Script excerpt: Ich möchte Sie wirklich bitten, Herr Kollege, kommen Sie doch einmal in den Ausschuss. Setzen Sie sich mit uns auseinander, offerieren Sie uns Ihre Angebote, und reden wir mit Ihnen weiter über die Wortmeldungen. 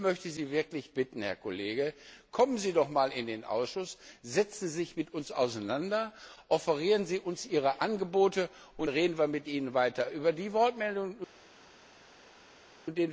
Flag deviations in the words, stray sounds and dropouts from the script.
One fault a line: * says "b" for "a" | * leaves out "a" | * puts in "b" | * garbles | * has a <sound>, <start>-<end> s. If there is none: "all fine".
all fine